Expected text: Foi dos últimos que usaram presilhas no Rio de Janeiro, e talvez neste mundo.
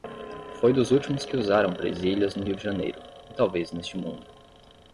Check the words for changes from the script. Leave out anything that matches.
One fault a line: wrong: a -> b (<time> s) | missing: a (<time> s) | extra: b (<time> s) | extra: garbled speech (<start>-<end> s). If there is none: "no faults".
no faults